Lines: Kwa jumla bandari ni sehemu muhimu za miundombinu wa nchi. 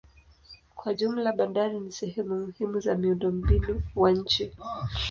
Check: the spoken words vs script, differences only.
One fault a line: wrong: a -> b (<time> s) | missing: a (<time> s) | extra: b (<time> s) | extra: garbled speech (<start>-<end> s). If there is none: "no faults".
no faults